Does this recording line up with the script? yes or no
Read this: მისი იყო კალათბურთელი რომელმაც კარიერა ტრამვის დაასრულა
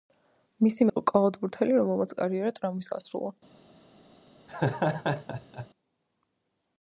yes